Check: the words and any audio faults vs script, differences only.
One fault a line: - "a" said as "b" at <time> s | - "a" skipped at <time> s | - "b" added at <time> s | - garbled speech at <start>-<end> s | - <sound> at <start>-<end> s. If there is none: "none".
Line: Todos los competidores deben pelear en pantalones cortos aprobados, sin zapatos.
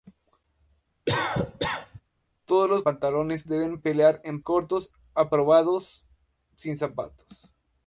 - cough at 1.1-2.0 s
- "competidores" said as "pantalones" at 2.8 s
- "pantalones" skipped at 4.4 s